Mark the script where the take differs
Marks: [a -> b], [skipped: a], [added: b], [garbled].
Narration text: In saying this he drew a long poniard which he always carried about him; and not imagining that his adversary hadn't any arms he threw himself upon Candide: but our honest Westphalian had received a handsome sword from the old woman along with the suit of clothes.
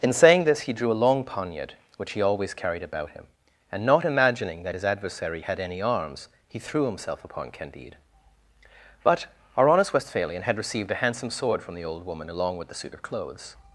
In saying this he drew a long poniard which he always carried about him; and not imagining that his adversary [hadn't -> had] any arms he threw himself upon Candide: but our honest Westphalian had received a handsome sword from the old woman along with the suit of clothes.